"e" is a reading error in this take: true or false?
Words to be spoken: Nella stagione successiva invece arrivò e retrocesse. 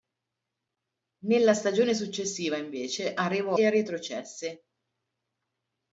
false